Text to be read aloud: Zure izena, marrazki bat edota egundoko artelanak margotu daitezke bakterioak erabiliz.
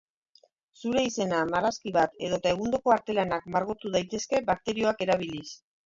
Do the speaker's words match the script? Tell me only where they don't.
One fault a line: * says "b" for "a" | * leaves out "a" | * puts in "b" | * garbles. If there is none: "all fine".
all fine